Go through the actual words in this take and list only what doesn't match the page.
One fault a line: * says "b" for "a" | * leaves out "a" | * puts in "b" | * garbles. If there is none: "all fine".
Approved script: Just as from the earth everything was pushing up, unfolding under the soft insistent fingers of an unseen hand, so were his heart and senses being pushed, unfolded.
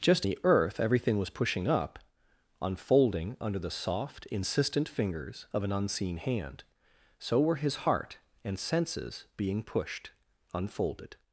* leaves out "as from"